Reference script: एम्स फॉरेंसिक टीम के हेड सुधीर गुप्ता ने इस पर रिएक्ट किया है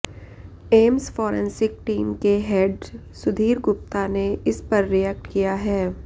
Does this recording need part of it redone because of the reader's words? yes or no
no